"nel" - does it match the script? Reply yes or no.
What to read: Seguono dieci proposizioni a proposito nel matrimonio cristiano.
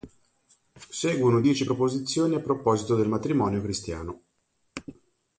no